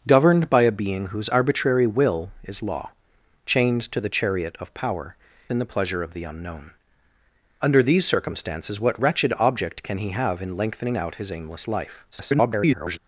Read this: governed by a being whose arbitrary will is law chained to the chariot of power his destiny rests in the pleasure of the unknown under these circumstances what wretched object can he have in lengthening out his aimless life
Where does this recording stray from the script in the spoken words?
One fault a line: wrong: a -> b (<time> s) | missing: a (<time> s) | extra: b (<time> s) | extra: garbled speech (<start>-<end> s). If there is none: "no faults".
missing: his destiny rests (5.2 s)
extra: garbled speech (12.1-13.0 s)